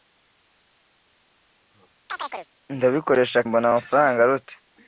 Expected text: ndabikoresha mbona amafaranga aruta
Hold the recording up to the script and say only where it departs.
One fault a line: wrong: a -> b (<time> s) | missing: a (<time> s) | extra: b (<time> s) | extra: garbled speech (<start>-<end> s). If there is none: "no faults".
no faults